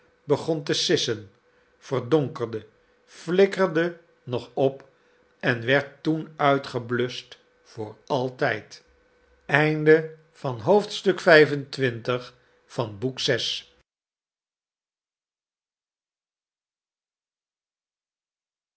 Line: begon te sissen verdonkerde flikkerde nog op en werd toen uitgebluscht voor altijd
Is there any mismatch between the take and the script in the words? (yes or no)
no